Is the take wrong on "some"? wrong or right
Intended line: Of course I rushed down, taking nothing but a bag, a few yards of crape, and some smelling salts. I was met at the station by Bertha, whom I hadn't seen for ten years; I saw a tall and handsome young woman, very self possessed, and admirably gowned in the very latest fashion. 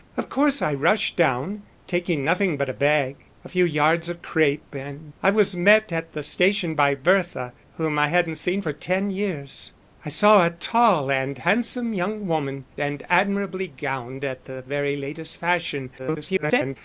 wrong